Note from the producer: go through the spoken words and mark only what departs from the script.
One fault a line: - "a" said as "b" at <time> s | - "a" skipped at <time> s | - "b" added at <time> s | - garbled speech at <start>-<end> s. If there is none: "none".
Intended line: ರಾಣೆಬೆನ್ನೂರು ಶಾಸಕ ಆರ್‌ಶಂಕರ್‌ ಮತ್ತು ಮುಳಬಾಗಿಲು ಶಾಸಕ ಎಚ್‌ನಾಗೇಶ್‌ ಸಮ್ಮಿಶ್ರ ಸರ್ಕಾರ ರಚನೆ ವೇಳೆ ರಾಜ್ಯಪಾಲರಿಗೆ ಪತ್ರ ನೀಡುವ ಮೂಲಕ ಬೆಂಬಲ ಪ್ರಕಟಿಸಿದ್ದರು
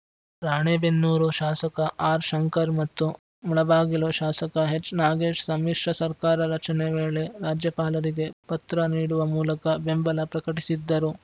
none